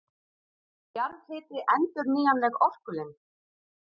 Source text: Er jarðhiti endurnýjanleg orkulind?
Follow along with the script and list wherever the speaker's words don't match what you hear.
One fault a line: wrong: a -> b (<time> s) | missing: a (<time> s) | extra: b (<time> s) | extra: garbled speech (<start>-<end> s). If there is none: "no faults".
no faults